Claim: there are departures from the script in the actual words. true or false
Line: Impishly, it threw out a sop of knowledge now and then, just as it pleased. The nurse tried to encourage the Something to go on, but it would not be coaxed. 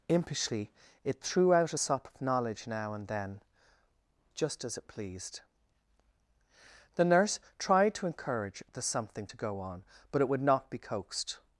false